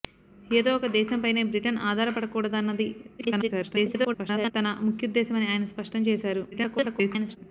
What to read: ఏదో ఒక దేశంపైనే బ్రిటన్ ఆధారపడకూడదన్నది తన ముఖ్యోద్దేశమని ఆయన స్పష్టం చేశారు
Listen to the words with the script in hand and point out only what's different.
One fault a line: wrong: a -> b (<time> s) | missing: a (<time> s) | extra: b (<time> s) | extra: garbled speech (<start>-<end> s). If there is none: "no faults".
extra: garbled speech (3.2-4.5 s)
extra: garbled speech (6.5-7.4 s)